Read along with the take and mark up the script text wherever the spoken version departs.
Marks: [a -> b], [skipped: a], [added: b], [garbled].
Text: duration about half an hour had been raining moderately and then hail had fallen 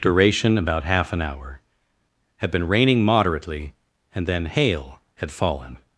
duration about half an hour had been raining moderately and then hail had fallen